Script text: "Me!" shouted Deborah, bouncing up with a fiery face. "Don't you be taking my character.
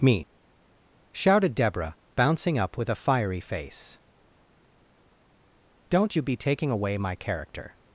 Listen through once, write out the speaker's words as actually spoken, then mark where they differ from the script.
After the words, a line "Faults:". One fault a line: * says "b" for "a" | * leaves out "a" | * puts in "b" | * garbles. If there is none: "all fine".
"Me!" shouted Deborah, bouncing up with a fiery face. "Don't you be taking away my character.
Faults:
* puts in "away"